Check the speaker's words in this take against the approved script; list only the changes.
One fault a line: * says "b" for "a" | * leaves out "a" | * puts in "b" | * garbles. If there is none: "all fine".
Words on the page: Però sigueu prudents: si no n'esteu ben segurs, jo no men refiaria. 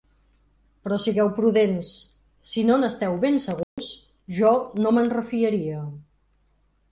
all fine